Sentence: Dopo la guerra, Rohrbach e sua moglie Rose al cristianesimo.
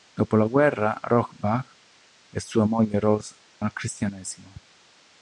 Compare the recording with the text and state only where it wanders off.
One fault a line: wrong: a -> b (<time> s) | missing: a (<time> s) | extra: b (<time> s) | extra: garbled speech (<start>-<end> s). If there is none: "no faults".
no faults